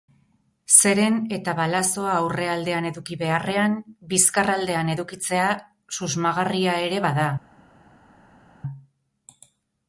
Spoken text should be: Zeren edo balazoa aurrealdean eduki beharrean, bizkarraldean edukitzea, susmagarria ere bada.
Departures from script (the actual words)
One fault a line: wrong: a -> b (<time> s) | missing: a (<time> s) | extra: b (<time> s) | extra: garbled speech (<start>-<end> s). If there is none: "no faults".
wrong: edo -> eta (1.4 s)